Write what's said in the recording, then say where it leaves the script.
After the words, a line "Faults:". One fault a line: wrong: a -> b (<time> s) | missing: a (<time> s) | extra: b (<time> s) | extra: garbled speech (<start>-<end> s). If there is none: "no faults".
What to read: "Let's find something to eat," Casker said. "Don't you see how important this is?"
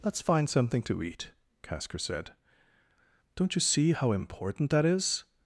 "Let's find something to eat," Casker said. "Don't you see how important that is?"
Faults:
wrong: this -> that (4.7 s)